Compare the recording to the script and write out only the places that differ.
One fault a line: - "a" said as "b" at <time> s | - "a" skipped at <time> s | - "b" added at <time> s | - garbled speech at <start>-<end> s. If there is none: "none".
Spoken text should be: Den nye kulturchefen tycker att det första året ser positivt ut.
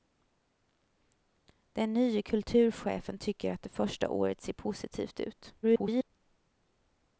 - garbled speech at 5.6-6.1 s